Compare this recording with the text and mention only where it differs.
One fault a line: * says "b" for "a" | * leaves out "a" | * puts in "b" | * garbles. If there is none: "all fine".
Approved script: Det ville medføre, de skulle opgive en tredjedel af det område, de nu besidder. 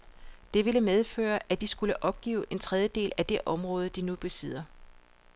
* puts in "at"